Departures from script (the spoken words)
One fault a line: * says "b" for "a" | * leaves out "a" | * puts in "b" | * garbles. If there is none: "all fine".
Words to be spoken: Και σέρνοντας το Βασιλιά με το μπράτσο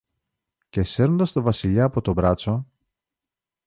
* says "από" for "με"